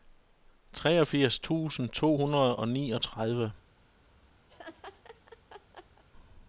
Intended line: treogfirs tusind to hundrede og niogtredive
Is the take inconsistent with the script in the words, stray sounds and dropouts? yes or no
yes